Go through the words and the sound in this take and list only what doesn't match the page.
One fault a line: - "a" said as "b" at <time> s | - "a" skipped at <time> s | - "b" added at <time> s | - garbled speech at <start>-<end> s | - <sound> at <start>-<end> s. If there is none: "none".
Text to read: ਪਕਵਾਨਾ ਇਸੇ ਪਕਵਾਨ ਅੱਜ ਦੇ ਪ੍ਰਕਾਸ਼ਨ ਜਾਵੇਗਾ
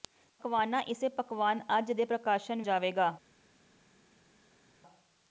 none